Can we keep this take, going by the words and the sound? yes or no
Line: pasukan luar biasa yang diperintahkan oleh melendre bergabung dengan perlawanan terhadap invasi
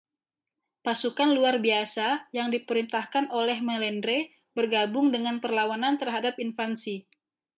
yes